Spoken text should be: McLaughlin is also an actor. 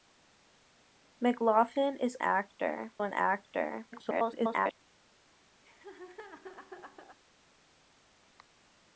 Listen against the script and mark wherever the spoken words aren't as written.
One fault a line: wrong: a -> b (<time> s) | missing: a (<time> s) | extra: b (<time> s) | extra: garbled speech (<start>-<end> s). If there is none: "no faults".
wrong: also -> actor (2.2 s)
extra: garbled speech (3.9-4.8 s)